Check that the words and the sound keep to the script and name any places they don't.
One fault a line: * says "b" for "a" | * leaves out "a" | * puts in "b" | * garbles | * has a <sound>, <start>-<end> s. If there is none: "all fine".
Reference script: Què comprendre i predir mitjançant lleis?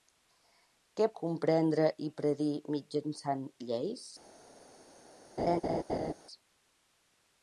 * has a laugh, 5.4-6.1 s